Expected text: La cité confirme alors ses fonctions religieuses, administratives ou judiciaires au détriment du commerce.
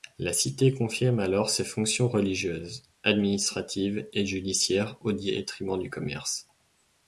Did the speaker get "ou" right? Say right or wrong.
wrong